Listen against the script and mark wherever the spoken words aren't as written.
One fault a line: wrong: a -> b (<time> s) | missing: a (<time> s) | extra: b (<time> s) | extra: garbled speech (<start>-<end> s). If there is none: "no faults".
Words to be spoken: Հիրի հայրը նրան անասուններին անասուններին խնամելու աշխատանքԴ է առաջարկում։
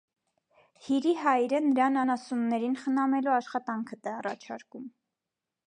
missing: անասուններին (2.8 s)